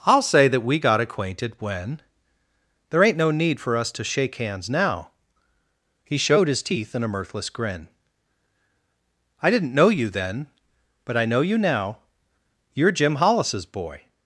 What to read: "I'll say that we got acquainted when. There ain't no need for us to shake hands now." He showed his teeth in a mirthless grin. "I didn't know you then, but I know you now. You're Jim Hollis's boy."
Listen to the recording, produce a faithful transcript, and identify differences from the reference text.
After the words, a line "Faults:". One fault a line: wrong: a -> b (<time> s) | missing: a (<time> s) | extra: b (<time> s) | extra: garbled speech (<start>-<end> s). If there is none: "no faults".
"I'll say that we got acquainted when. There ain't no need for us to shake hands now." He showed his teeth in a mirthless grin. "I didn't know you then, but I know you now. You're Jim Hollis's boy."
Faults:
no faults